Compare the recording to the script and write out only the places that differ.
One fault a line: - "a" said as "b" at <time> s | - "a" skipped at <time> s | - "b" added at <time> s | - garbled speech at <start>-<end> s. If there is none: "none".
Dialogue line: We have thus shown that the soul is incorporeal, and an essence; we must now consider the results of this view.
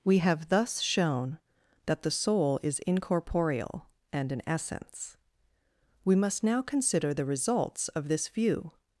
none